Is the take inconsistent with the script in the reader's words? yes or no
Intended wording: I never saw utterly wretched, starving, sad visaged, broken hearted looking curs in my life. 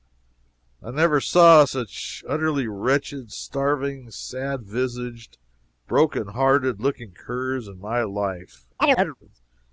yes